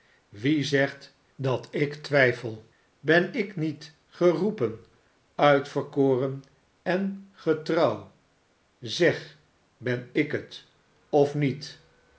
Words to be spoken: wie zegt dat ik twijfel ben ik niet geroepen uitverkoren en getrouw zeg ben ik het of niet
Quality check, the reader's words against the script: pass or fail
pass